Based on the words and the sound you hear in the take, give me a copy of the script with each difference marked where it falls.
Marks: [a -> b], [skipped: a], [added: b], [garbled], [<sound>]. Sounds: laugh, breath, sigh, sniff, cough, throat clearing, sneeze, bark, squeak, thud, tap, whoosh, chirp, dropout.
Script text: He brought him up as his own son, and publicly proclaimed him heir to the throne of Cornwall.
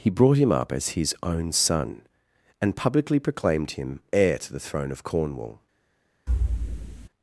He brought him up as his own son, and publicly proclaimed him heir to the throne of Cornwall. [thud]